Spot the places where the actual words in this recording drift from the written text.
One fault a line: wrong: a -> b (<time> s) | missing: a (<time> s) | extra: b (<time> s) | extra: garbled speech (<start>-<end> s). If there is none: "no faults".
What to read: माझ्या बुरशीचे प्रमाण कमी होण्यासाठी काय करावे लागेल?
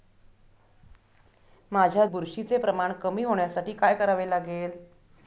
no faults